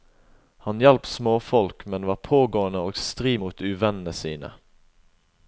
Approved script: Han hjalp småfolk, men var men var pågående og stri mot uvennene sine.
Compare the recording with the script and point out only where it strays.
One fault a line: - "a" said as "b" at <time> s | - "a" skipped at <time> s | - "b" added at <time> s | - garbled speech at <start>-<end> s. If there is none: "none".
- "men var" skipped at 2.1 s